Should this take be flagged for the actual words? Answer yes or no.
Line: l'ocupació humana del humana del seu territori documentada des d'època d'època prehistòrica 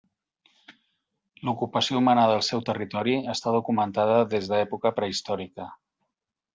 yes